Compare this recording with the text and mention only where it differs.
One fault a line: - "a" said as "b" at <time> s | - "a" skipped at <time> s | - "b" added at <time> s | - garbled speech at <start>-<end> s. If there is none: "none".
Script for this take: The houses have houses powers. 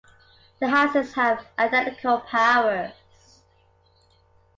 - "houses" said as "identical" at 1.6 s